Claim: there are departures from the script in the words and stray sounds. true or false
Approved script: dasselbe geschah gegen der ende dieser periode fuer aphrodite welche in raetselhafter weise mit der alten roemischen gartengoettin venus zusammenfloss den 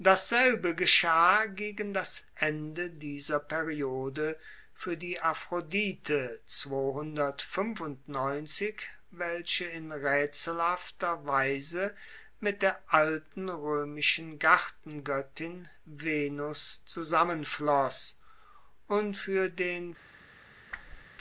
true